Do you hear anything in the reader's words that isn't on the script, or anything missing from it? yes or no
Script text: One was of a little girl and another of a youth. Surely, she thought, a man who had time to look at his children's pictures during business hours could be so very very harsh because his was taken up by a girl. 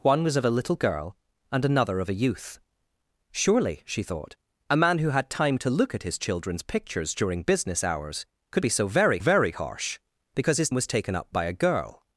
no